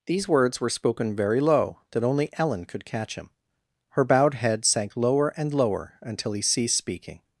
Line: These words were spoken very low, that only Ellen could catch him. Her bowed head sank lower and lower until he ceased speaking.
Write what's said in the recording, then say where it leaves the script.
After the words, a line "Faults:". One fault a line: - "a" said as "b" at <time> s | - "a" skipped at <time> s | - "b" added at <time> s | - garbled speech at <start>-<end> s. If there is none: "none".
These words were spoken very low, that only Ellen could catch him. Her bowed head sank lower and lower until he ceased speaking.
Faults:
none